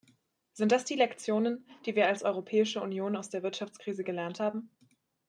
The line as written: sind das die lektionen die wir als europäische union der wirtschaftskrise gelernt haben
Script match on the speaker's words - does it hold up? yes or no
no